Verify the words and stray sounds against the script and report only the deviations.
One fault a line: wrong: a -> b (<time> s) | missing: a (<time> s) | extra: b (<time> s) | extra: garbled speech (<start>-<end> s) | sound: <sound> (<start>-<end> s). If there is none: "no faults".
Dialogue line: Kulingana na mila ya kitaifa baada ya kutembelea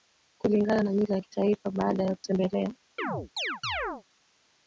sound: chirp (3.0-4.0 s)